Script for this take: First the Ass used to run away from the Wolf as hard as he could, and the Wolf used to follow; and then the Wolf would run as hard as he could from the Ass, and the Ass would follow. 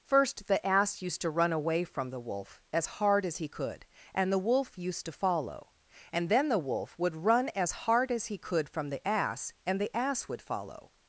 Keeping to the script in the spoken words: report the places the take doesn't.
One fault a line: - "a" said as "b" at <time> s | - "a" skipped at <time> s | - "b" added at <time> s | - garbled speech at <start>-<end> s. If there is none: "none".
none